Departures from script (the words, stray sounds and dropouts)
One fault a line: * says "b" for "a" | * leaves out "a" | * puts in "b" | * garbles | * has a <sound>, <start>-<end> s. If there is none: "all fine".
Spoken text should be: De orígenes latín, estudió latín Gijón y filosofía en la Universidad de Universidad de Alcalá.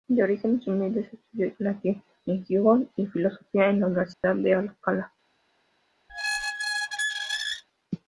* says "humildes" for "latín"
* puts in "en"
* has a dropout, 4.1-4.2 s
* leaves out "Universidad de"
* has a squeak, 6.1-7.6 s